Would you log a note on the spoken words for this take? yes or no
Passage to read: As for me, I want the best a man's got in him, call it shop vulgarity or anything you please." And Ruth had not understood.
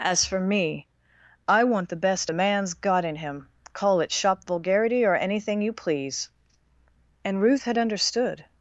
yes